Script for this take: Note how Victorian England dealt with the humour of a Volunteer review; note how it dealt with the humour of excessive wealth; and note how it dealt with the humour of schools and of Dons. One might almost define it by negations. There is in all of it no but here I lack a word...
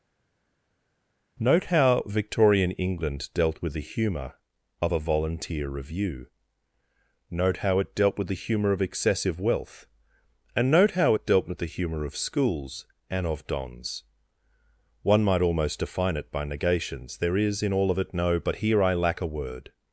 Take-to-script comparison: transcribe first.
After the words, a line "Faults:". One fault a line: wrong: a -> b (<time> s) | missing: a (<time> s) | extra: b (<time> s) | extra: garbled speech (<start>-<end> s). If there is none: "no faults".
Note how Victorian England dealt with the humour of a Volunteer review; note how it dealt with the humour of excessive wealth; and note how it dealt with the humour of schools and of Dons. One might almost define it by negations. There is in all of it no but here I lack a word...
Faults:
no faults